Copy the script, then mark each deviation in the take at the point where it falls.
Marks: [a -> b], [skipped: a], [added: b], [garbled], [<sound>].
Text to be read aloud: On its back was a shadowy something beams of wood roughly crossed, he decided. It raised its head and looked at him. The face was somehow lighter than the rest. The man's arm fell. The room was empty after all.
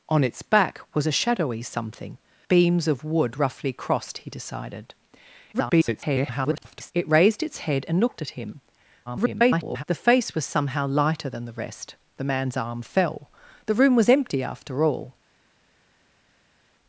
On its back was a shadowy something beams of wood roughly crossed, he decided. [garbled] It raised its head and looked at him. [garbled] The face was somehow lighter than the rest. The man's arm fell. The room was empty after all.